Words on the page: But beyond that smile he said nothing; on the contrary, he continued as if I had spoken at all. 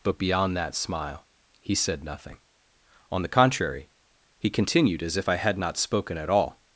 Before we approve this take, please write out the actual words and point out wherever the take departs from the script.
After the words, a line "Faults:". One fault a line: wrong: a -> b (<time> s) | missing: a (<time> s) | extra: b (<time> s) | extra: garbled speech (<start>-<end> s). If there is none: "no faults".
But beyond that smile he said nothing; on the contrary, he continued as if I had not spoken at all.
Faults:
extra: not (5.6 s)